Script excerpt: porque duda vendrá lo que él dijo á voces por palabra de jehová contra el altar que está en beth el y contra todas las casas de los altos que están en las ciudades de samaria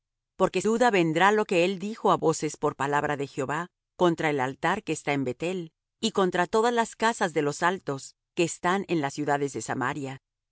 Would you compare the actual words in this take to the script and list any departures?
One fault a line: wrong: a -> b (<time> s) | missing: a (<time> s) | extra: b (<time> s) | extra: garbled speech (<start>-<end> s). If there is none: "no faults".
no faults